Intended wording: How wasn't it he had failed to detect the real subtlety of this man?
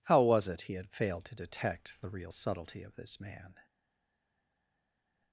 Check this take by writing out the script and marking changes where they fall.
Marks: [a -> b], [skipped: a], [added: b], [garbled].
How [wasn't -> was] it he had failed to detect the real subtlety of this man?